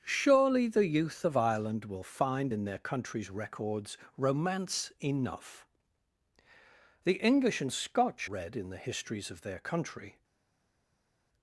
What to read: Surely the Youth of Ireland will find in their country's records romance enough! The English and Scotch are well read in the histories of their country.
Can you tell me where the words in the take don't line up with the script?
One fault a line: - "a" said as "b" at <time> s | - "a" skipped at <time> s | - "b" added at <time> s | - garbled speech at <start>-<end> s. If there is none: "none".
- "are well" skipped at 8.3 s